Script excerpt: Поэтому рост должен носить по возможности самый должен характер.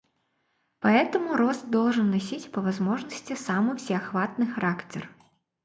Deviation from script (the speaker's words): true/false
true